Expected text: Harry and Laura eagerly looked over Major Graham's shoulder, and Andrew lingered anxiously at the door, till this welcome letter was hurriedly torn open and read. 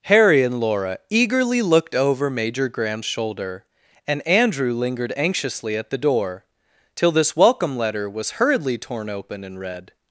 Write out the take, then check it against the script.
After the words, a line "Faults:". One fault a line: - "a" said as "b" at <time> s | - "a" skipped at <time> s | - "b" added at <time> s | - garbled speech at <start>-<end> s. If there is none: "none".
Harry and Laura eagerly looked over Major Graham's shoulder, and Andrew lingered anxiously at the door, till this welcome letter was hurriedly torn open and read.
Faults:
none